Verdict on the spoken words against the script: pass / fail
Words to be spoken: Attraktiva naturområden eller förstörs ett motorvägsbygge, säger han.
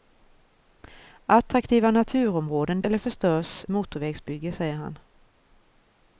pass